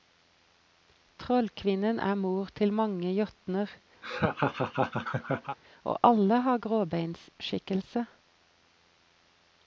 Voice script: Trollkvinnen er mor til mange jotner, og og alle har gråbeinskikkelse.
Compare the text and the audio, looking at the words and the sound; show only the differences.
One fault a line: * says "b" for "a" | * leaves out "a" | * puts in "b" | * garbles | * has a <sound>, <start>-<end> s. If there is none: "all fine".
* has a laugh, 4.0-5.6 s
* leaves out "og"